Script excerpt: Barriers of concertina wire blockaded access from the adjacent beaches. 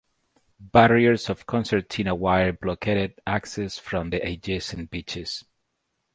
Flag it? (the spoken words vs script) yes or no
no